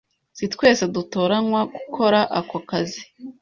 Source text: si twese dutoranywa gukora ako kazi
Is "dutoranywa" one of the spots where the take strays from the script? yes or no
no